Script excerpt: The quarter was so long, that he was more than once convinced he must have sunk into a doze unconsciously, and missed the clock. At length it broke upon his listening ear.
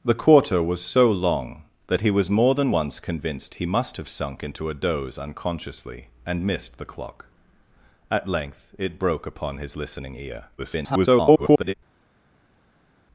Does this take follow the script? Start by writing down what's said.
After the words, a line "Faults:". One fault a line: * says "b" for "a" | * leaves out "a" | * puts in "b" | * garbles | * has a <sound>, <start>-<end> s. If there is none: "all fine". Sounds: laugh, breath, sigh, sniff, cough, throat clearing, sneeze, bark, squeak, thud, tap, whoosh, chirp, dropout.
The quarter was so long, that he was more than once convinced he must have sunk into a doze unconsciously, and missed the clock. At length it broke upon his listening ear. [garbled]
Faults:
* garbles